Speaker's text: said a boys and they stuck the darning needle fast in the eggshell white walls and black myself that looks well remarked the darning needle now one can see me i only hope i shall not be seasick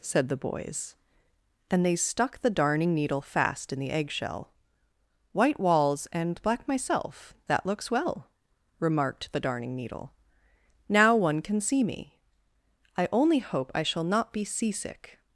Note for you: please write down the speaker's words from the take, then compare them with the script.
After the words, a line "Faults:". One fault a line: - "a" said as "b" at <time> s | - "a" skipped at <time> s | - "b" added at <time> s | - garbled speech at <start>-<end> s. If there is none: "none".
said the boys and they stuck the darning needle fast in the eggshell white walls and black myself that looks well remarked the darning needle now one can see me i only hope i shall not be seasick
Faults:
- "a" said as "the" at 0.3 s